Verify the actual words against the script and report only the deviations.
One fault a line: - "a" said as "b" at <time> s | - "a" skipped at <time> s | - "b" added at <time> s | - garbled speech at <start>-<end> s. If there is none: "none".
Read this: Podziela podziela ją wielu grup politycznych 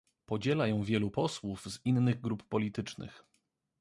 - "podziela" skipped at 0.7 s
- "posłów z innych" added at 1.1 s